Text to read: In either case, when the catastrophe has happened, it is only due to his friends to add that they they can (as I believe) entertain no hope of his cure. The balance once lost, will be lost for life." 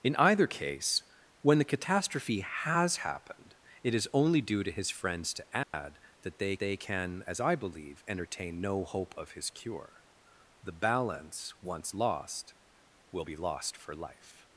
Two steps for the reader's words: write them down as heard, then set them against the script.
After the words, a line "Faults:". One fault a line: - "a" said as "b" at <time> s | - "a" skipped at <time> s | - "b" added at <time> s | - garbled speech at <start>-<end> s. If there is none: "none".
In either case, when the catastrophe has happened, it is only due to his friends to add that they they can (as I believe) entertain no hope of his cure. The balance once lost, will be lost for life."
Faults:
none